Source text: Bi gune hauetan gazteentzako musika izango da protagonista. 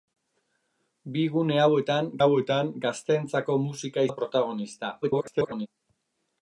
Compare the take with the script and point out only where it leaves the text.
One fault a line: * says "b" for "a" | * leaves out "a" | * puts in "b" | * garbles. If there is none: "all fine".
* puts in "hauetan"
* leaves out "izango"
* garbles